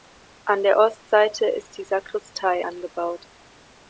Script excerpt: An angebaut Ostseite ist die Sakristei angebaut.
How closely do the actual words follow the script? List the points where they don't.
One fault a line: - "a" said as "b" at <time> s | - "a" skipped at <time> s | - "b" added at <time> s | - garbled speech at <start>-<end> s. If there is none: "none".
- "angebaut" said as "der" at 0.6 s